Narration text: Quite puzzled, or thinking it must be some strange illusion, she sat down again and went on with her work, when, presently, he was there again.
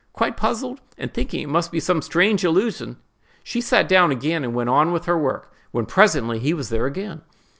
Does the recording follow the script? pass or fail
fail